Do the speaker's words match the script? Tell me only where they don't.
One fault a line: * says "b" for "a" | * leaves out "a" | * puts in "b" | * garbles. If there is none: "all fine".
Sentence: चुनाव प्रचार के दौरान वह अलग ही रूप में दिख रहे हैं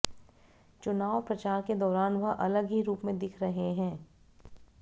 all fine